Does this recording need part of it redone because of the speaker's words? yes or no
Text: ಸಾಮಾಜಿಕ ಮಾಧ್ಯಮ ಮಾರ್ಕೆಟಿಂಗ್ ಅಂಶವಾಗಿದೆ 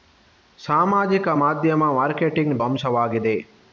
no